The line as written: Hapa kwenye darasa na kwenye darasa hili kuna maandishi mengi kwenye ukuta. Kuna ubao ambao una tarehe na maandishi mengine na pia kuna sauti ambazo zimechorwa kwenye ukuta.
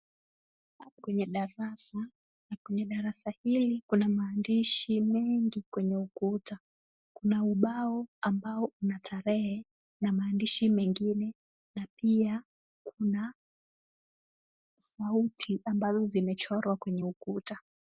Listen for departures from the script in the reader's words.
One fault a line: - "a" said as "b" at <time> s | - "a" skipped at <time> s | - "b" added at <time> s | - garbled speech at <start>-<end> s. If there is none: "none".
none